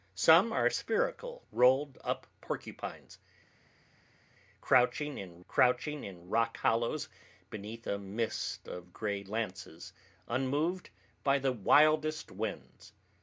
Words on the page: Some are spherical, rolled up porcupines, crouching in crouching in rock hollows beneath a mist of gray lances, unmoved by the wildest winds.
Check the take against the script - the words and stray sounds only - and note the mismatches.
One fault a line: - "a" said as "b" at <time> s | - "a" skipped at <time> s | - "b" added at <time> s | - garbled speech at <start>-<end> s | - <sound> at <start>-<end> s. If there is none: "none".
none